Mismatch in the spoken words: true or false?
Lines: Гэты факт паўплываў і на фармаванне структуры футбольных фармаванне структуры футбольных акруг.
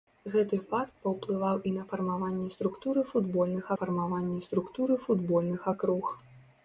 false